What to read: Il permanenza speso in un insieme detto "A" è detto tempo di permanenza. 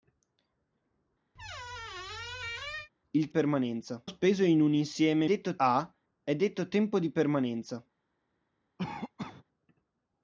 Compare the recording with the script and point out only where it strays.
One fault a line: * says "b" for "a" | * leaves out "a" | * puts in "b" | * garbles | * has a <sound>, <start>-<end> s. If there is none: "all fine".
* has a squeak, 1.3-2.9 s
* has a cough, 8.8-9.4 s